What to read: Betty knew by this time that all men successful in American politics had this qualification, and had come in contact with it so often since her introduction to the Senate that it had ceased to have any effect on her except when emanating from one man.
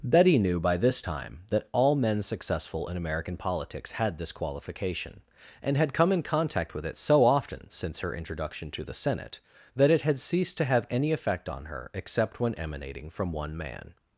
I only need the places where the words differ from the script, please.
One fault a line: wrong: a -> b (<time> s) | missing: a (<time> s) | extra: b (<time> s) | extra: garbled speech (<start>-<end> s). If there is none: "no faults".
no faults